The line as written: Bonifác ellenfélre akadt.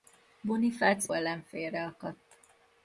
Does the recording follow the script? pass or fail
pass